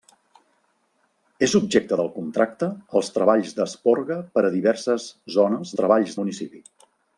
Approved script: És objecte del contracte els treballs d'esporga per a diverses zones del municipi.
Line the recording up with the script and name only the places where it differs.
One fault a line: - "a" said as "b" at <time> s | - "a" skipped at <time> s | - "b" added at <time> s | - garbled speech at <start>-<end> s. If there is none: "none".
- "del" said as "treballs" at 5.8 s